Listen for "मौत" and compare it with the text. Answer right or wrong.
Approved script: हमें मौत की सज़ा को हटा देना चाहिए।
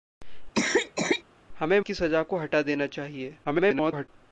wrong